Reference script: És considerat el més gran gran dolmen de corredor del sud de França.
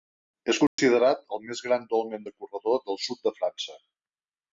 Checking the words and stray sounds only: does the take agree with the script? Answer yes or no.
no